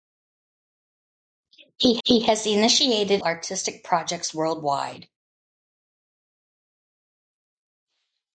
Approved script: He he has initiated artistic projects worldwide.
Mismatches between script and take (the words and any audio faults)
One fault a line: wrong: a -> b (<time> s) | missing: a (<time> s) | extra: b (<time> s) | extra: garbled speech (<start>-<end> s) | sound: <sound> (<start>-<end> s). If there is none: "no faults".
no faults